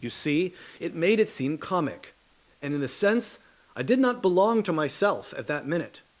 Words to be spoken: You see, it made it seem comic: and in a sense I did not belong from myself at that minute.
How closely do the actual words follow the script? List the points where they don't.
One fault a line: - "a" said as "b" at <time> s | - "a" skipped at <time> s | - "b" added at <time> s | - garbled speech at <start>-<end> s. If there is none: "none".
- "from" said as "to" at 4.6 s